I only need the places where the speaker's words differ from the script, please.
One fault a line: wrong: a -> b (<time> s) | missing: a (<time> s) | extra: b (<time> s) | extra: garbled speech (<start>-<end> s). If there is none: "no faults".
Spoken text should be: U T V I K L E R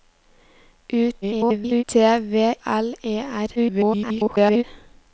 extra: garbled speech (1.2-1.8 s)
missing: I K (2.5 s)
extra: garbled speech (3.6-4.6 s)